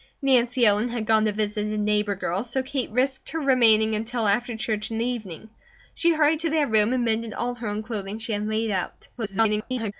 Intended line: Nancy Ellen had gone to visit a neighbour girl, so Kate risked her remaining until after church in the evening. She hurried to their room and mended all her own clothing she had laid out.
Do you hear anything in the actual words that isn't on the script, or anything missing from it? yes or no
yes